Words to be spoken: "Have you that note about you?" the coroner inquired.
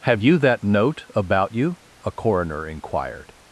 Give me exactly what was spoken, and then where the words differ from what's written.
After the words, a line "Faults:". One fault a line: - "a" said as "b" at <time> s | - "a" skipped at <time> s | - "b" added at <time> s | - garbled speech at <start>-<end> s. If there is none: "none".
"Have you that note about you?" a coroner inquired.
Faults:
- "the" said as "a" at 2.1 s